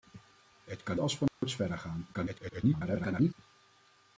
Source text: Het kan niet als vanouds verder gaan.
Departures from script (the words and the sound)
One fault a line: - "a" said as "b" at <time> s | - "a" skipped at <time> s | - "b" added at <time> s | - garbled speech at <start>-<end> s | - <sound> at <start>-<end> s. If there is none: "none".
- "niet" skipped at 1.0 s
- dropout at 1.3-1.4 s
- garbled speech at 2.1-3.3 s